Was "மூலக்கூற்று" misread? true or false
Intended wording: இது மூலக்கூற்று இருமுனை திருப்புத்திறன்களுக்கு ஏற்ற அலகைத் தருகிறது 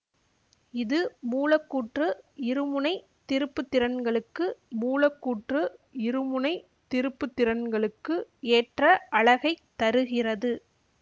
false